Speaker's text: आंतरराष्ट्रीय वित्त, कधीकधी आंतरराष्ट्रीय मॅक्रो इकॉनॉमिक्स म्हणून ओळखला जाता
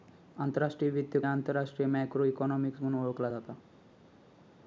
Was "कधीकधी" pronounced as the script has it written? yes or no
no